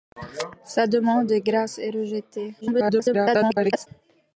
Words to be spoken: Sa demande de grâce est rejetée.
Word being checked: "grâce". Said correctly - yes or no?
yes